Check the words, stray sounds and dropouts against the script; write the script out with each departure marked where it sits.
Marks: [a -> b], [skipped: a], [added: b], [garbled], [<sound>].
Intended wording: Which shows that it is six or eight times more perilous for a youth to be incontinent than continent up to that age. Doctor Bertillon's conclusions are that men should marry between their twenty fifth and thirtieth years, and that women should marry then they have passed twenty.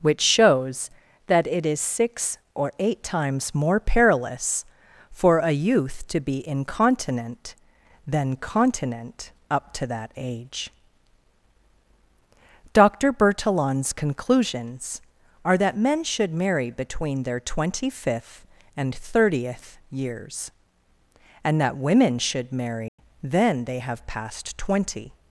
Which shows that it is six or eight times more perilous for a youth to be incontinent than continent up to that age. Doctor Bertillon's conclusions are that men should marry between their twenty fifth and thirtieth years, and that women should marry [dropout] then they have passed twenty.